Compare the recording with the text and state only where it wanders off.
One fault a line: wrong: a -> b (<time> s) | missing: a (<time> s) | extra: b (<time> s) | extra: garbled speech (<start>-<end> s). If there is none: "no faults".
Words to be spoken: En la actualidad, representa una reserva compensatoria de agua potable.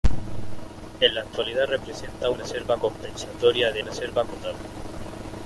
missing: una (2.3 s)
wrong: agua -> reserva (3.8 s)